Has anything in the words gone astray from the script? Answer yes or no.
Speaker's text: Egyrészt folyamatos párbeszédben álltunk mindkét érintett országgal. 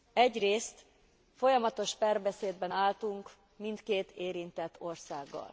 no